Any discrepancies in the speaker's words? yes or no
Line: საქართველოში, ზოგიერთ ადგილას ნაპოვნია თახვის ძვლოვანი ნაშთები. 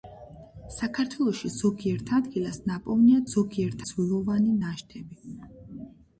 yes